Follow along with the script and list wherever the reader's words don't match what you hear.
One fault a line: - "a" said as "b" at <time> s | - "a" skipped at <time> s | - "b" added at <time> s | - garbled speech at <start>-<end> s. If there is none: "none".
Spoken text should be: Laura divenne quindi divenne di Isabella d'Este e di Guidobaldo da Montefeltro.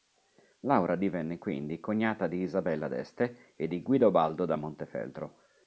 - "divenne" said as "cognata" at 1.8 s